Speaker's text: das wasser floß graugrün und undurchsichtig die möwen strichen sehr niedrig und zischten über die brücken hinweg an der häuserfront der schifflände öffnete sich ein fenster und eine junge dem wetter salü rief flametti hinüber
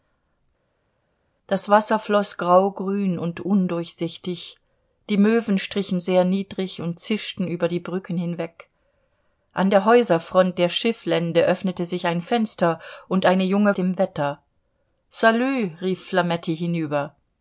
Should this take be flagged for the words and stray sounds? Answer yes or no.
no